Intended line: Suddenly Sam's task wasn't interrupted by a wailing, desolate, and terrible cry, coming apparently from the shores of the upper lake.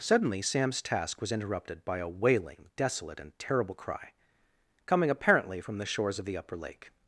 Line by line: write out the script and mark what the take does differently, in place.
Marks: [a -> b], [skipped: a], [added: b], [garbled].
Suddenly Sam's task [wasn't -> was] interrupted by a wailing, desolate, and terrible cry, coming apparently from the shores of the upper lake.